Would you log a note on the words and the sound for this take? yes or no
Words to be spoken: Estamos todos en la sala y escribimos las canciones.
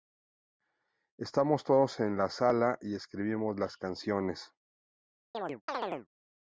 yes